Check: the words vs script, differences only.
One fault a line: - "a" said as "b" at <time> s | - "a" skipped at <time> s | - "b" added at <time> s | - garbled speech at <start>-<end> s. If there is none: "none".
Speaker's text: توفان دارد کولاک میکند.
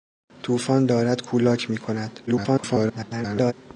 - garbled speech at 2.3-3.5 s